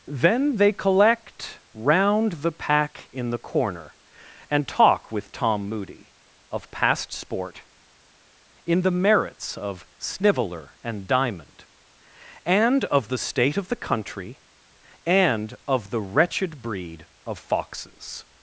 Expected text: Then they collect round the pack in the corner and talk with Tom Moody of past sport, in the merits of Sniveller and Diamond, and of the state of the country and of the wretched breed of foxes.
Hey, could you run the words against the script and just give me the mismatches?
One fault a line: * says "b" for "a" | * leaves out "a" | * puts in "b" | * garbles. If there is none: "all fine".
all fine